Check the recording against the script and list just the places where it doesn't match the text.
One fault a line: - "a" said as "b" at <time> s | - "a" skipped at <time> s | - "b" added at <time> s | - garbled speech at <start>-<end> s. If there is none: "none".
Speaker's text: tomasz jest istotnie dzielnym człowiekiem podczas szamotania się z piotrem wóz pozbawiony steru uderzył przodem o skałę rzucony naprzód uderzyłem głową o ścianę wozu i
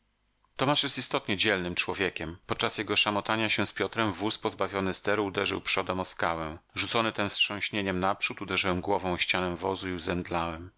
- "jego" added at 2.8 s
- "tem wstrząśnieniem" added at 7.1 s